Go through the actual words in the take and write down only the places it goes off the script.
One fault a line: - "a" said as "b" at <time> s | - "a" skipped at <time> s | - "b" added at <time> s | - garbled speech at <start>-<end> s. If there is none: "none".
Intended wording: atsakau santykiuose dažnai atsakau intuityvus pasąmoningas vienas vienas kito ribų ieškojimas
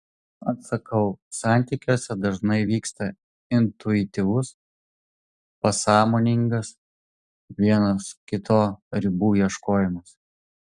- "atsakau" said as "vyksta" at 2.7 s
- "vienas" skipped at 8.0 s